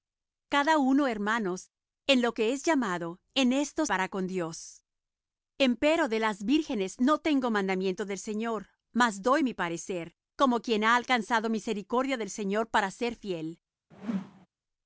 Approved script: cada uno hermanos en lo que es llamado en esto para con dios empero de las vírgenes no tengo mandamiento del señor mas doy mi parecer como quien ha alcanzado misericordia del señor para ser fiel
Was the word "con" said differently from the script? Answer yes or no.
no